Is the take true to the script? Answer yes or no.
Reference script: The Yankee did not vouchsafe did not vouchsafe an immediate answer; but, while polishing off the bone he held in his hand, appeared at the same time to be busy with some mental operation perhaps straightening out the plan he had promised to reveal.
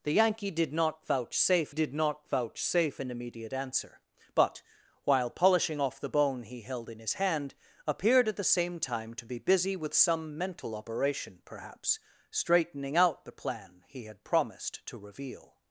yes